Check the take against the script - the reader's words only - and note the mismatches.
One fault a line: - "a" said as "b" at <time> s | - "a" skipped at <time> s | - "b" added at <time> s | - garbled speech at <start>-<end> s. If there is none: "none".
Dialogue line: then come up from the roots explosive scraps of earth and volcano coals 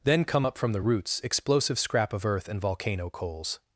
- "scraps" said as "scrap" at 1.8 s